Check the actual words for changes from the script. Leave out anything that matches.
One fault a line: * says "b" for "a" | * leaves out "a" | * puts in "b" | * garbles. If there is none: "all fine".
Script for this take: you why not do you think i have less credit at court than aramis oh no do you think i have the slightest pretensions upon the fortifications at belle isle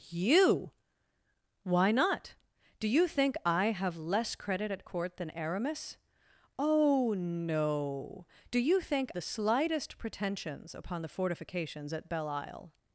* leaves out "i have"